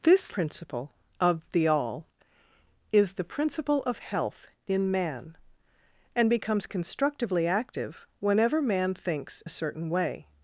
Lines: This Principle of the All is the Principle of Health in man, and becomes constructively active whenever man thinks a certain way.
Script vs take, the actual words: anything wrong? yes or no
no